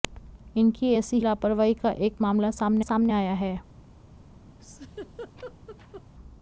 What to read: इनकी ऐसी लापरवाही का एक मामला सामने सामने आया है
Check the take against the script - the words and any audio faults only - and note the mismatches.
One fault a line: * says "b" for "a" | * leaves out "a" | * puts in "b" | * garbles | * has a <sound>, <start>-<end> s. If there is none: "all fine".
* has a laugh, 4.6-6.0 s